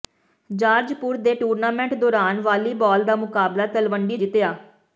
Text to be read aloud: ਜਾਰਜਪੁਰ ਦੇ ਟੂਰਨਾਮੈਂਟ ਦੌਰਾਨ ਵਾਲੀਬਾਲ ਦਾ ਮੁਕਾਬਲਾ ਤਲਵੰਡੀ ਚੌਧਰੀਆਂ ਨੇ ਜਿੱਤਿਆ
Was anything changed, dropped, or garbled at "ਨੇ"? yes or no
yes